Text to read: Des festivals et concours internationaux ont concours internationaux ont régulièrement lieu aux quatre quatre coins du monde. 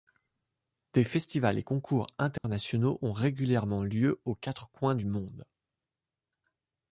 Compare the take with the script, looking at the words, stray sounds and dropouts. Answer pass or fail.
fail